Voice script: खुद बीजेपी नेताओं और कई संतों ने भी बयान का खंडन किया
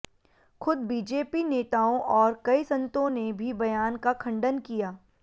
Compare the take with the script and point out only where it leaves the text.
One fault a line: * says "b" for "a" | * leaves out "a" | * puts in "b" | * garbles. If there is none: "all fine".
all fine